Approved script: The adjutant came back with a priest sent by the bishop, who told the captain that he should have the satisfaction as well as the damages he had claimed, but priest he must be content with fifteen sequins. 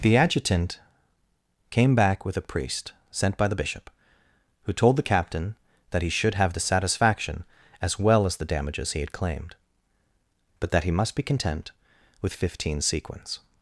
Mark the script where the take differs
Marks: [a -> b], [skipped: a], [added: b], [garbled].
The adjutant came back with a priest sent by the bishop, who told the captain that he should have the satisfaction as well as the damages he had claimed, but [priest -> that] he must be content with fifteen sequins.